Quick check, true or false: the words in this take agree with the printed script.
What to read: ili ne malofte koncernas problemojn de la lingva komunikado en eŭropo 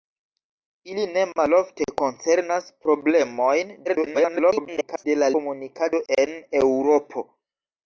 false